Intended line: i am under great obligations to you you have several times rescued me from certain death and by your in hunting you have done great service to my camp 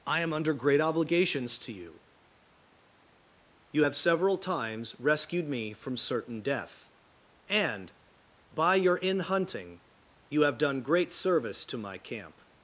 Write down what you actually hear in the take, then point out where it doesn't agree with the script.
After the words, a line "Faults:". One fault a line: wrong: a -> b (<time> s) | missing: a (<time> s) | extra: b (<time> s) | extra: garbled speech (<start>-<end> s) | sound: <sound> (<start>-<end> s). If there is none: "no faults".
i am under great obligations to you you have several times rescued me from certain death and by your in hunting you have done great service to my camp
Faults:
no faults